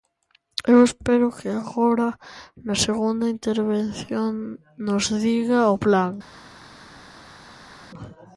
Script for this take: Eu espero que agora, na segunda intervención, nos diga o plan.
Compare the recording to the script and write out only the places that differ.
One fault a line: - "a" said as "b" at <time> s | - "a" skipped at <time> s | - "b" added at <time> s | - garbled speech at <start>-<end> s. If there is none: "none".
none